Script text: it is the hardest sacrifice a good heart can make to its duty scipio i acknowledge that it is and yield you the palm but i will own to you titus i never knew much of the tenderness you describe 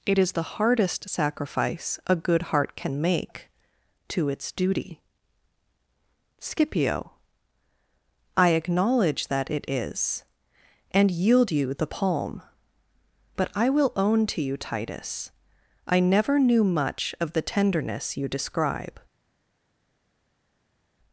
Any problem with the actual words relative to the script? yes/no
no